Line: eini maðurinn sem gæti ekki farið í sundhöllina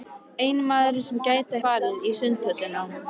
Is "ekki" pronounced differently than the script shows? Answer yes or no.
yes